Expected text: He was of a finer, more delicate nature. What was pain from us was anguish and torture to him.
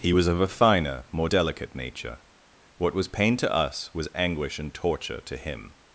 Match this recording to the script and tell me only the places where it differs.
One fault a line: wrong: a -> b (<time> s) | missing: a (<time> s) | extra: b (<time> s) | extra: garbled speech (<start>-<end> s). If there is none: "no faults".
wrong: from -> to (3.4 s)